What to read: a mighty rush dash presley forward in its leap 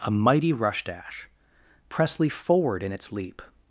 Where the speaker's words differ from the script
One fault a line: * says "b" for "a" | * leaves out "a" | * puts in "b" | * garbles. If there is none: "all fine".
all fine